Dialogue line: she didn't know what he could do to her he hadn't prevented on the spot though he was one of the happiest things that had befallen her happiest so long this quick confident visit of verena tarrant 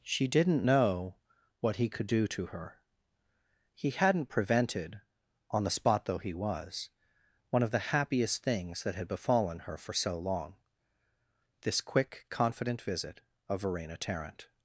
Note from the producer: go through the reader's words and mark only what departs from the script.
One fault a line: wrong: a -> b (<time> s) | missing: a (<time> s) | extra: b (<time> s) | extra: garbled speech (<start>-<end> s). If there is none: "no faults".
wrong: happiest -> for (9.8 s)